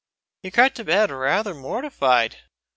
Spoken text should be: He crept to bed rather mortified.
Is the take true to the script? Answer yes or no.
yes